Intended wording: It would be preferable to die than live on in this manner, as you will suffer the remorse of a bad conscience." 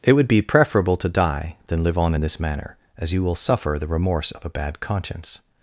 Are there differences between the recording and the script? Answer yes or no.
no